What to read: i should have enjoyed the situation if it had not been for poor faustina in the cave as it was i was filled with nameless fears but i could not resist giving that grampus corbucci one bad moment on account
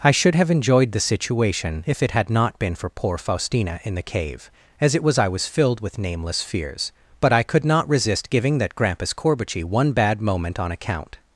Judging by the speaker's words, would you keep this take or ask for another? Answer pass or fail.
pass